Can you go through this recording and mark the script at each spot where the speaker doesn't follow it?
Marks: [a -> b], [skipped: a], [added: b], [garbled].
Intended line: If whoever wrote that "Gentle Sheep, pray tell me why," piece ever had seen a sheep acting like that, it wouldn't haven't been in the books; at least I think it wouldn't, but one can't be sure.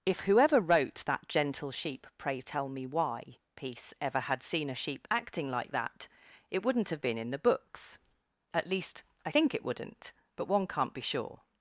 If whoever wrote that "Gentle Sheep, pray tell me why," piece ever had seen a sheep acting like that, it wouldn't [haven't -> have] been in the books; at least I think it wouldn't, but one can't be sure.